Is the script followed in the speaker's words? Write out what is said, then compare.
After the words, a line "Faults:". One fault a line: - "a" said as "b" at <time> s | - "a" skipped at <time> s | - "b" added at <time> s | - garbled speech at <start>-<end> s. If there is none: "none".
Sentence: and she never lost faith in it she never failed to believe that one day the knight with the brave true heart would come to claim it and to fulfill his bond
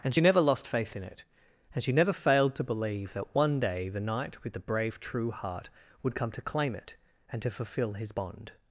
and she never lost faith in it and she never failed to believe that one day the knight with the brave true heart would come to claim it and to fulfill his bond
Faults:
- "and" added at 1.7 s